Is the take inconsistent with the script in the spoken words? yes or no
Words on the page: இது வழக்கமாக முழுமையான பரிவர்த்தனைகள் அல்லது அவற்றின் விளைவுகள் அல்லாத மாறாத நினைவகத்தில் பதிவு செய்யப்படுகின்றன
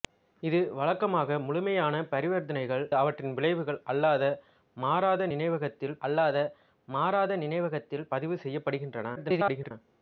yes